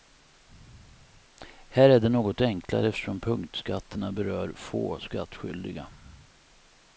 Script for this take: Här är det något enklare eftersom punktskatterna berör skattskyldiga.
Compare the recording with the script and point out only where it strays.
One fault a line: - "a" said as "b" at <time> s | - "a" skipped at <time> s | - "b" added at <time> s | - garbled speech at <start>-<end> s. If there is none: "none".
- "få" added at 4.5 s